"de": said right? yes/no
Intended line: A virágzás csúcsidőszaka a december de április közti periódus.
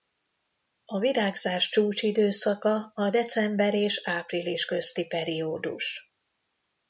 no